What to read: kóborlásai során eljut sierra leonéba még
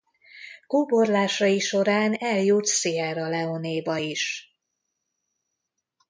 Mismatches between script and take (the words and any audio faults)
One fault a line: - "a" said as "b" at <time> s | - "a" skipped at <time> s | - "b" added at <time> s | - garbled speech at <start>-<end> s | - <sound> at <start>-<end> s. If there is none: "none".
- "még" said as "is" at 3.9 s